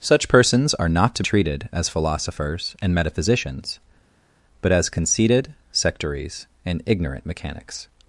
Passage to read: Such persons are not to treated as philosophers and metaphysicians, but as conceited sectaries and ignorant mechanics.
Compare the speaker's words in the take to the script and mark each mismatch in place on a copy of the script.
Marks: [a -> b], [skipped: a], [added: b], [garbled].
Such persons are not to treated as philosophers and metaphysicians, but as conceited sectaries and ignorant mechanics.